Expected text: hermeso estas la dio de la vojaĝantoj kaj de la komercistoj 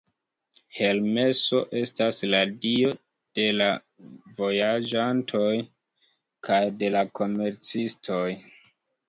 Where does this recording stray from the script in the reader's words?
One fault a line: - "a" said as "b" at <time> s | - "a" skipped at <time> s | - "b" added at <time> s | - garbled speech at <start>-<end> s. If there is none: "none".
none